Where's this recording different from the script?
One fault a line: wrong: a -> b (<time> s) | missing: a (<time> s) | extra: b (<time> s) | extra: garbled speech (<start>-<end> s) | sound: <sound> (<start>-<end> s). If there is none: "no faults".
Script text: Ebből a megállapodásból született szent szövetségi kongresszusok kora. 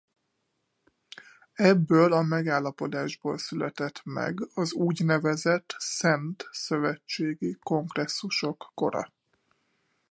extra: meg az úgynevezett (4.0 s)